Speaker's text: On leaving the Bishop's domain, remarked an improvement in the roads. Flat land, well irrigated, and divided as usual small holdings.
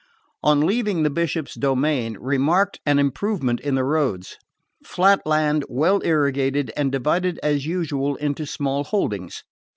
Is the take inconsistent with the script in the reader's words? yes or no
yes